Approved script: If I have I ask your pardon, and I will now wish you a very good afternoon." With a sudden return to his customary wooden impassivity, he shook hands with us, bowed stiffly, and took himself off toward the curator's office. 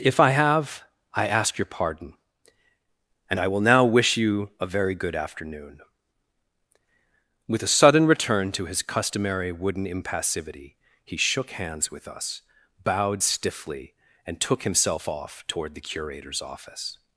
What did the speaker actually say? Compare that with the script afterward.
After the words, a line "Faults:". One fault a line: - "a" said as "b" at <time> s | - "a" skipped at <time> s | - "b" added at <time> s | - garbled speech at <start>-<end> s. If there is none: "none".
If I have I ask your pardon, and I will now wish you a very good afternoon." With a sudden return to his customary wooden impassivity, he shook hands with us, bowed stiffly, and took himself off toward the curator's office.
Faults:
none